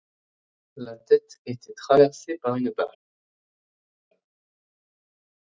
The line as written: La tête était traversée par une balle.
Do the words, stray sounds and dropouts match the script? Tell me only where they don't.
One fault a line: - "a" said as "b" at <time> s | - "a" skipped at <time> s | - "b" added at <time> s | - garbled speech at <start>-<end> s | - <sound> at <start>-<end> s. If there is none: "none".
none